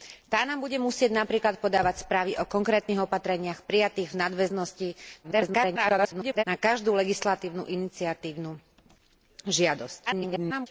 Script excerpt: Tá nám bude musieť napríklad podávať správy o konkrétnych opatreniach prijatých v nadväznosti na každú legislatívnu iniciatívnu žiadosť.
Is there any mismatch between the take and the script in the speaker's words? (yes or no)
yes